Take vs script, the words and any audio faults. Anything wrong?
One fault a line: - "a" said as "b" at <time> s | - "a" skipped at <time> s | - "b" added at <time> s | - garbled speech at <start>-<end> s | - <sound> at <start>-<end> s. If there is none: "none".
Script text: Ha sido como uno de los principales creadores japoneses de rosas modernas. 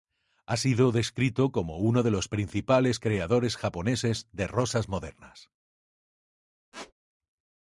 - "descrito" added at 0.9 s
- squeak at 6.7-6.9 s